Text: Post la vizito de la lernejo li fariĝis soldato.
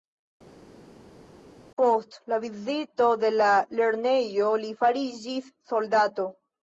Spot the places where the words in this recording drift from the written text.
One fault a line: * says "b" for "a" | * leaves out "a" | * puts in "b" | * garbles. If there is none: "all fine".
all fine